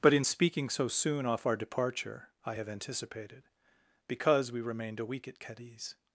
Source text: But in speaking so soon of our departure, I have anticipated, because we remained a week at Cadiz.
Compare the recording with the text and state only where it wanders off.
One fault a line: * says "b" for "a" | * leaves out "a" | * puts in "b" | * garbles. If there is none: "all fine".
* says "off" for "of"